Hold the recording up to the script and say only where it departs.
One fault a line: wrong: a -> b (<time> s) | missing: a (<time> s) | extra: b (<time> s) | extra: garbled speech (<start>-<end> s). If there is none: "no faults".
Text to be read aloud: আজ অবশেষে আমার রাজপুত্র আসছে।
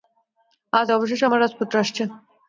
no faults